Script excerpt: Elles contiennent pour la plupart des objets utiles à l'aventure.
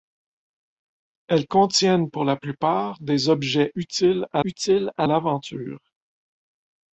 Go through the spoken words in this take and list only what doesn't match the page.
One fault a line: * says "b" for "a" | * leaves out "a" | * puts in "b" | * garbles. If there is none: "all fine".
* puts in "utiles à"